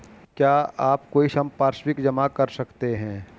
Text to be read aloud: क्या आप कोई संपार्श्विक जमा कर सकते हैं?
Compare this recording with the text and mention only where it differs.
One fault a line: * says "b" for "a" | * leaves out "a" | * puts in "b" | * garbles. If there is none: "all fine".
all fine